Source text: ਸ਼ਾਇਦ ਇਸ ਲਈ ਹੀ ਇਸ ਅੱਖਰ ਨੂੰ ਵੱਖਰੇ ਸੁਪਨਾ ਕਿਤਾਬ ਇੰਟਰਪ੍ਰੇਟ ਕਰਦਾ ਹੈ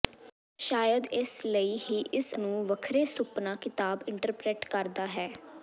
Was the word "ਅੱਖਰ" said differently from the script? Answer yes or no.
yes